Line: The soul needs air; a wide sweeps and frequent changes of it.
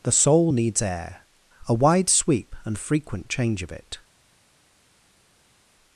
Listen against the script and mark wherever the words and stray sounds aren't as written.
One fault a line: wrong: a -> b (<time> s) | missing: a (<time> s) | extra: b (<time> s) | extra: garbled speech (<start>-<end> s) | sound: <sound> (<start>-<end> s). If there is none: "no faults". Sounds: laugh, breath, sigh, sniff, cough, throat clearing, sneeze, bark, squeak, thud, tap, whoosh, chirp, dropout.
wrong: sweeps -> sweep (2.1 s)
wrong: changes -> change (3.3 s)